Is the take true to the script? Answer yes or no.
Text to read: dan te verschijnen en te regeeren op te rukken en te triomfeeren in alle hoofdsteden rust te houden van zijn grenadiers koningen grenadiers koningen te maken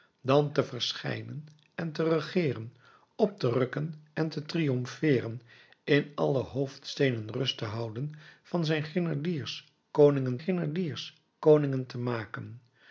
yes